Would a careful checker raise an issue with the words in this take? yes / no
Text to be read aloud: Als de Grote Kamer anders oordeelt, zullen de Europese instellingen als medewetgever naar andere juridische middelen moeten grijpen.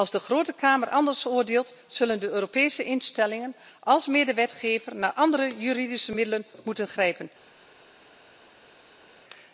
no